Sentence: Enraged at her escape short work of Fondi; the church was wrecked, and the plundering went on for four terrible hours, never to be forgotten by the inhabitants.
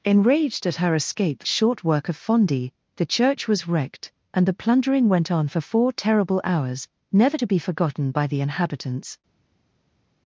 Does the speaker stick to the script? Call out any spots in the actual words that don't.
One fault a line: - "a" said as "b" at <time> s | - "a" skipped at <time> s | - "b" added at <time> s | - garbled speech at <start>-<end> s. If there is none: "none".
none